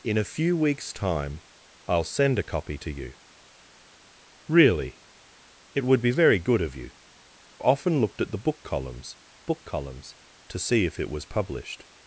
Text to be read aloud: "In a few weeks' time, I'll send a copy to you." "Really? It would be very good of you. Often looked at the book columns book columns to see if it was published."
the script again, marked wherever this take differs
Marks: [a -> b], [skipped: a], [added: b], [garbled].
"In a few weeks' time, I'll send a copy to you." "Really? It would be very good of you. Often looked at the book columns book columns to see if it was published."